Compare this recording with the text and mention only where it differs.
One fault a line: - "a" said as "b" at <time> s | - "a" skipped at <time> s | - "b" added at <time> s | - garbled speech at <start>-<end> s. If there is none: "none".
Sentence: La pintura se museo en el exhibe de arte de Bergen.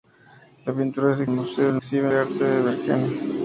none